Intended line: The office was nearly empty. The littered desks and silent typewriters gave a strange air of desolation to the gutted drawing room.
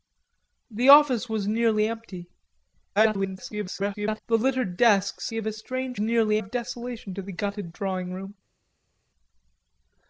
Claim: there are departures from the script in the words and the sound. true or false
true